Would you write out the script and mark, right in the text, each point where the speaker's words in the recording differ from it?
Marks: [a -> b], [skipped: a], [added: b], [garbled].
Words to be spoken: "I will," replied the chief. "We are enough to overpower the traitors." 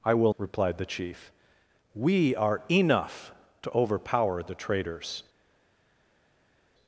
"I will," replied the chief. "We are enough to overpower the traitors."